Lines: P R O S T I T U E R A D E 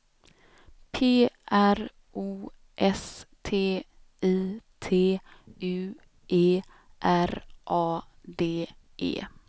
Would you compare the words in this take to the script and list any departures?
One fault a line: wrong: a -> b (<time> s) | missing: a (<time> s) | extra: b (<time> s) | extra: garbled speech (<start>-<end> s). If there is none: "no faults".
no faults